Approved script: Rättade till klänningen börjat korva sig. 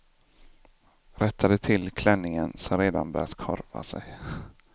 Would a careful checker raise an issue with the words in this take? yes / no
yes